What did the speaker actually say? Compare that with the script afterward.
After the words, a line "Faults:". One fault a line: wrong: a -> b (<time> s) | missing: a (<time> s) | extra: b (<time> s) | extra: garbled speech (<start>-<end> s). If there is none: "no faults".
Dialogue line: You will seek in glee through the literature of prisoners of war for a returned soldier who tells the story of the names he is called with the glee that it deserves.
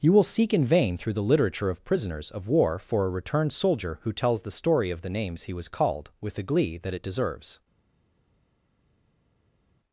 You will seek in vain through the literature of prisoners of war for a returned soldier who tells the story of the names he was called with the glee that it deserves.
Faults:
wrong: glee -> vain (0.7 s)
wrong: is -> was (5.5 s)